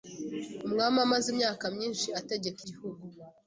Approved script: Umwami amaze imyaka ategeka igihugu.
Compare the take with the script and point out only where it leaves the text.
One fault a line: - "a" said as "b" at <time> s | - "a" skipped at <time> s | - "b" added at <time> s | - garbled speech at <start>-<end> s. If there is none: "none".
- "myinshi" added at 1.7 s